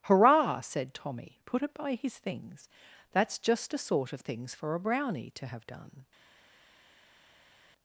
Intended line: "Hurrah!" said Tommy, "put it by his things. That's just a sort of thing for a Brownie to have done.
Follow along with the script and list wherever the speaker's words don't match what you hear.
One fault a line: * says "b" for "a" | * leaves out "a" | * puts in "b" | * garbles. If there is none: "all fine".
* says "things" for "thing"